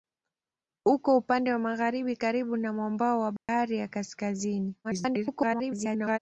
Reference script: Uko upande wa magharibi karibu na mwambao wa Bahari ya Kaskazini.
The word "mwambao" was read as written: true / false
true